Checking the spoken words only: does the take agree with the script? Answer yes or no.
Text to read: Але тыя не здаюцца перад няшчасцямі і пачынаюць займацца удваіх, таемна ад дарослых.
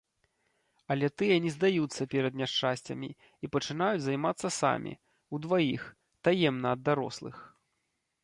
no